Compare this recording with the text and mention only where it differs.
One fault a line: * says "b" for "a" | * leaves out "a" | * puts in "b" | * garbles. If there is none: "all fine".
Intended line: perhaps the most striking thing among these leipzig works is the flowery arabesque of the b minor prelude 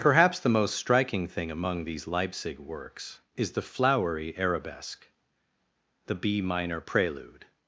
* leaves out "of"